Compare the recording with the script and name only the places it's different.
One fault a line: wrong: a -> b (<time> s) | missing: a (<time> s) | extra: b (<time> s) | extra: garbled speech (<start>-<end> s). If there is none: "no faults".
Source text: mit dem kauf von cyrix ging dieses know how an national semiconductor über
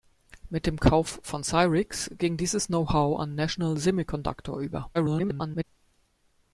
extra: garbled speech (4.9-5.6 s)